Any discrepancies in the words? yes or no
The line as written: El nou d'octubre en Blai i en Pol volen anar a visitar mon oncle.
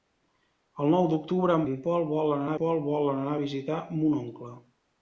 yes